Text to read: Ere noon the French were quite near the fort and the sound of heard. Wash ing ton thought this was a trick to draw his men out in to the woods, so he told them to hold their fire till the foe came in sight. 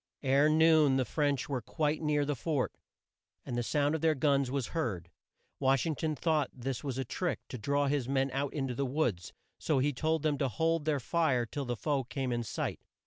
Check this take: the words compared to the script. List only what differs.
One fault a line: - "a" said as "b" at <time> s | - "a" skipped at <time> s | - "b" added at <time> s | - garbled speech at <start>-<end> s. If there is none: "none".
- "their guns was" added at 4.0 s